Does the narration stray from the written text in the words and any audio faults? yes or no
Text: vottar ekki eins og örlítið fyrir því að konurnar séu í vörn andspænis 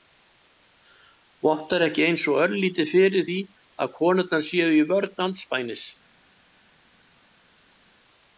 no